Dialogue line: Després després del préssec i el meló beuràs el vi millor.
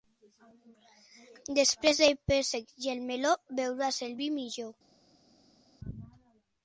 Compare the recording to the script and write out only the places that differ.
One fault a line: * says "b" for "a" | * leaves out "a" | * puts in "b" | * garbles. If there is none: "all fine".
* leaves out "després"